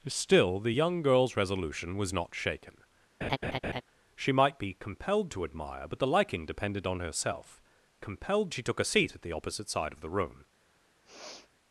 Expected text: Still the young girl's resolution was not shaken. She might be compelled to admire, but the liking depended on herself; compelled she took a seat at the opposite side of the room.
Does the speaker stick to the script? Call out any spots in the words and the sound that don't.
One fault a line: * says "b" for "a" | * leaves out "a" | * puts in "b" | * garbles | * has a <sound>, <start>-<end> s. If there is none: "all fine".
* has a laugh, 3.2-3.8 s
* has a sniff, 11.0-11.5 s